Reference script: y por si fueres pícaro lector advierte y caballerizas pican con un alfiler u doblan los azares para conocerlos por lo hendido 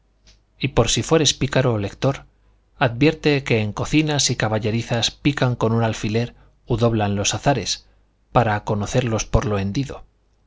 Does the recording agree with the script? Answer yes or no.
no